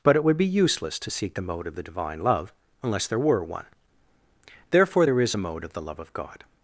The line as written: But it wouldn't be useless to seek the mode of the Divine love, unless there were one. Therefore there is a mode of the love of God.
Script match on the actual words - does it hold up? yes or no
no